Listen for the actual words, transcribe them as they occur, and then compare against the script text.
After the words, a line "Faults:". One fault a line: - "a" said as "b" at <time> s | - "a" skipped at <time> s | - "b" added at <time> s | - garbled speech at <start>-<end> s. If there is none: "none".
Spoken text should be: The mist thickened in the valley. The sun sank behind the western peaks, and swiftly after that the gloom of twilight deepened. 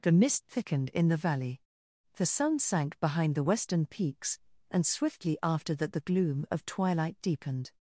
The mist thickened in the valley. The sun sank behind the western peaks, and swiftly after that the gloom of twilight deepened.
Faults:
none